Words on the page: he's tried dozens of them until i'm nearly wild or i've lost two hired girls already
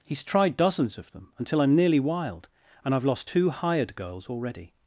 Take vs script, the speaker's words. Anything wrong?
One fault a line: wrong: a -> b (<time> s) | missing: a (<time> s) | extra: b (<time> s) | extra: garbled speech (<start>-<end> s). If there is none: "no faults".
wrong: or -> and (2.8 s)